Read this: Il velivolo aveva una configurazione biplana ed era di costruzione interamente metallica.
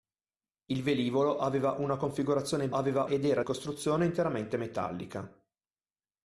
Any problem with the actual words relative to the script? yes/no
yes